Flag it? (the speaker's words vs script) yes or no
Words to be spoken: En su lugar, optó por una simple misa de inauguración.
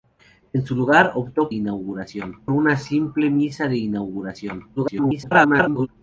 yes